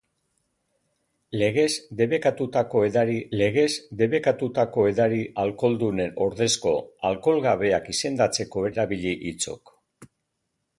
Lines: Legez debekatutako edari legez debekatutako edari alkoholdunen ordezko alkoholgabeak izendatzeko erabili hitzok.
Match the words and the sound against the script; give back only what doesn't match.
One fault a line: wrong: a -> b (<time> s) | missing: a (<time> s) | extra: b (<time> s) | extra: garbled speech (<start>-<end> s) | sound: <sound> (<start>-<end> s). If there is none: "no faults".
no faults